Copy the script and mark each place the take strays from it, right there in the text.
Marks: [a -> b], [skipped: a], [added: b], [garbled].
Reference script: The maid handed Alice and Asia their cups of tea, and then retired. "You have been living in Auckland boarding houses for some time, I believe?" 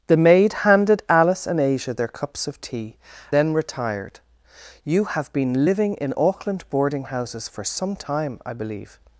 The maid handed Alice and Asia their cups of tea, [skipped: and] then retired. "You have been living in Auckland boarding houses for some time, I believe?"